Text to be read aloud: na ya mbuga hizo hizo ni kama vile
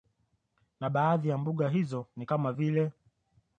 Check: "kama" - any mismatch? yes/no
no